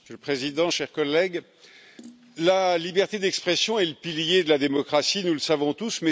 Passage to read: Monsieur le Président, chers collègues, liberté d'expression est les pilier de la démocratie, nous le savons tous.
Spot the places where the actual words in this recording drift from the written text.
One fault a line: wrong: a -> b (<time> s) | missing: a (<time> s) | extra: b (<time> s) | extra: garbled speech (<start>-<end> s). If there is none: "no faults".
extra: la (2.4 s)
wrong: les -> le (3.8 s)